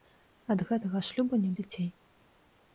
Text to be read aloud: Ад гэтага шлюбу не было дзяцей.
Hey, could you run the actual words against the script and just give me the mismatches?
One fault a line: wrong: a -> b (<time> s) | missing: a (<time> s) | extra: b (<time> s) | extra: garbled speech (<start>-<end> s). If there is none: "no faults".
missing: было (1.5 s)